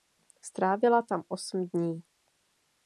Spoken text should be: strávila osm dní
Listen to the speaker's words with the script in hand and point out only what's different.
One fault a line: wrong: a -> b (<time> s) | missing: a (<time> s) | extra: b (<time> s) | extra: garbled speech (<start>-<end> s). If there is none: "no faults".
extra: tam (1.0 s)